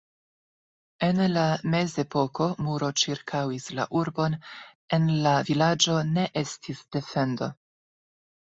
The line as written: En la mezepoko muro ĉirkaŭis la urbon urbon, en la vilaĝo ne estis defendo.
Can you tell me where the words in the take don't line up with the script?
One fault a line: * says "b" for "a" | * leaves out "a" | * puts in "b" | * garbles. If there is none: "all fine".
* leaves out "urbon"